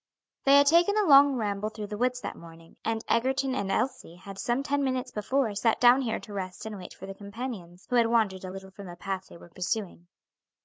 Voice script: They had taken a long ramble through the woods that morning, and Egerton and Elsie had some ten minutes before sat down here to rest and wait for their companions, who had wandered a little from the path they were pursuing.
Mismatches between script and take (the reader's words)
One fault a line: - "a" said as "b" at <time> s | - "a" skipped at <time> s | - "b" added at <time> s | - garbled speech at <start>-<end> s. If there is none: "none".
none